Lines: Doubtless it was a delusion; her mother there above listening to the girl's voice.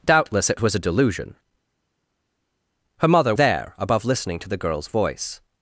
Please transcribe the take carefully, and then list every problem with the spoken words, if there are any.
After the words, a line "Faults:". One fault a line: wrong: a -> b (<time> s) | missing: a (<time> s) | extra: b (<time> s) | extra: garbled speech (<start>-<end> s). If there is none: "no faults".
Doubtless it was a delusion; her mother there above listening to the girl's voice.
Faults:
no faults